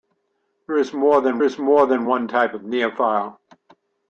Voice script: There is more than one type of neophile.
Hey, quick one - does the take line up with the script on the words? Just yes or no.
no